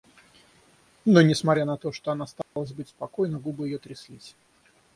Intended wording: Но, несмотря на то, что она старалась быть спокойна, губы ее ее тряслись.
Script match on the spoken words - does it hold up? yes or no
no